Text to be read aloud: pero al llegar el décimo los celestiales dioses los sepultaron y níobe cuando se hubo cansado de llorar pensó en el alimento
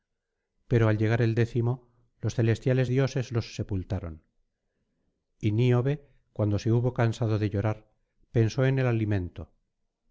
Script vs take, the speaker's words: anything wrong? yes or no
no